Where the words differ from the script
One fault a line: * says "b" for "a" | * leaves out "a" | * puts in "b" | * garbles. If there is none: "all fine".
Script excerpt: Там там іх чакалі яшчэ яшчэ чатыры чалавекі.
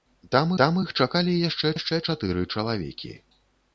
all fine